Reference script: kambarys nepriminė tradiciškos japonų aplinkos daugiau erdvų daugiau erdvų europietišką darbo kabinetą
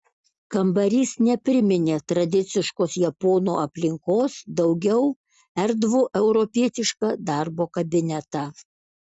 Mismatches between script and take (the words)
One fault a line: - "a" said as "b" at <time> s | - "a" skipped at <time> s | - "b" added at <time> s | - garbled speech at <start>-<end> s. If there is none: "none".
- "daugiau erdvų" skipped at 6.0 s